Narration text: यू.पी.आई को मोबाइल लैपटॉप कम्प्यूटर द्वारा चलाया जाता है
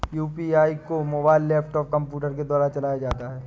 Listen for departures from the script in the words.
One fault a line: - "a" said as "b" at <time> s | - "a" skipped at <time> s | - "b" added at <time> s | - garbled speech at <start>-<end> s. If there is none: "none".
- "के" added at 2.3 s